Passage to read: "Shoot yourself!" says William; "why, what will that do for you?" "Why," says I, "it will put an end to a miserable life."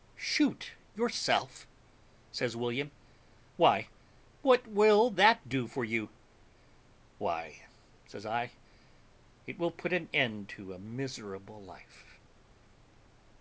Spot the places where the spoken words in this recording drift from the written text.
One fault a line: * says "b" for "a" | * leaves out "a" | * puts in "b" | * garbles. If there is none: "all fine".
all fine